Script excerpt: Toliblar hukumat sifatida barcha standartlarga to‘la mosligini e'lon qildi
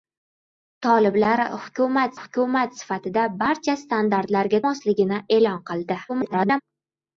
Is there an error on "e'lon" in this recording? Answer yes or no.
no